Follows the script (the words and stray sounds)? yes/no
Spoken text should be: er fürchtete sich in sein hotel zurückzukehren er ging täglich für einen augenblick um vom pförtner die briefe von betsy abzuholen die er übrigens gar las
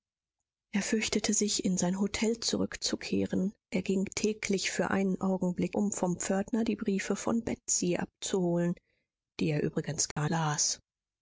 no